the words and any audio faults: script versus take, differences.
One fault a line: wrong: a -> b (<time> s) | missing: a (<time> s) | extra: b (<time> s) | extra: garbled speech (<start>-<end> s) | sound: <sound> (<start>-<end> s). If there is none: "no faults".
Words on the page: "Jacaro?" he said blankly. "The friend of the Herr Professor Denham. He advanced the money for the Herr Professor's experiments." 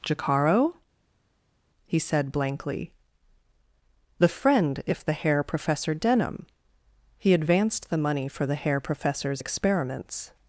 wrong: of -> if (4.8 s)